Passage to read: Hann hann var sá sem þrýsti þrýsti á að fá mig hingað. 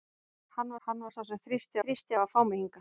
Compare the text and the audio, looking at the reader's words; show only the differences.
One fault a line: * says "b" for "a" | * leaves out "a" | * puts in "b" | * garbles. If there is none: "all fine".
all fine